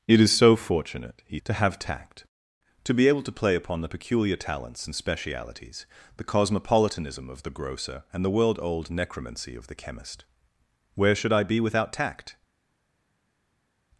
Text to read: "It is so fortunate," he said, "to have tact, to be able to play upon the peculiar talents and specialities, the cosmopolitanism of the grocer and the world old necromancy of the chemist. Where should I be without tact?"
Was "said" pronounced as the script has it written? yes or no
no